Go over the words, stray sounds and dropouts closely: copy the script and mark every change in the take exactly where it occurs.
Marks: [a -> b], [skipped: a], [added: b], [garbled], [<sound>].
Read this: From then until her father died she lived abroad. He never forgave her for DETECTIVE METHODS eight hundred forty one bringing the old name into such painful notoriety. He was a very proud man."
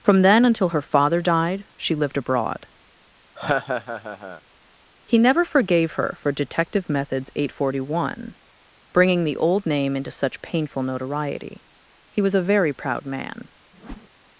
From then until her father died she lived abroad. [laugh] He never forgave her for DETECTIVE METHODS eight hundred forty one bringing the old name into such painful notoriety. He was a very proud man." [whoosh]